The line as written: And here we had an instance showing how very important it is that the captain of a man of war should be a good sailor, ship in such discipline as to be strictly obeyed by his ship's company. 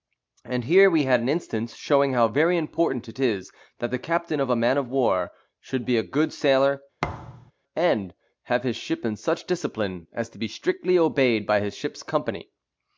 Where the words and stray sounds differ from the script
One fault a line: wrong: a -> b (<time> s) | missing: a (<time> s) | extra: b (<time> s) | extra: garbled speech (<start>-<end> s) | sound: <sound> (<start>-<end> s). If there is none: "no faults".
sound: thud (7.0-7.5 s)
extra: and have his (7.7 s)